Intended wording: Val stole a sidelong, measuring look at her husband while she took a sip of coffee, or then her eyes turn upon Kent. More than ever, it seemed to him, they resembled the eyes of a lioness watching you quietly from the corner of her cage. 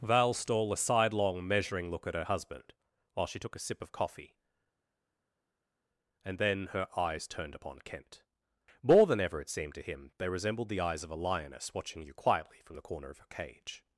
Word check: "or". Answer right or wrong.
wrong